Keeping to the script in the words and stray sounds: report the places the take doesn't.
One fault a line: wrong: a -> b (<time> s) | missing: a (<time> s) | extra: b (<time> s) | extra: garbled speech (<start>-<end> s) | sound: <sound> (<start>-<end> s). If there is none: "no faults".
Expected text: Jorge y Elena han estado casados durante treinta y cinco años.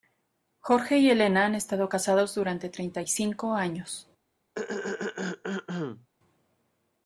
sound: throat clearing (4.5-6.1 s)